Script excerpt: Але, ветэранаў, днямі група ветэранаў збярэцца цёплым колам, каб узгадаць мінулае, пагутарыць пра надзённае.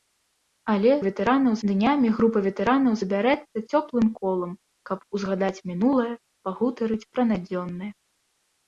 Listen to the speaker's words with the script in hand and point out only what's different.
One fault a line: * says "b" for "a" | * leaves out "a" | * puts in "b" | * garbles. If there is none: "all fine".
all fine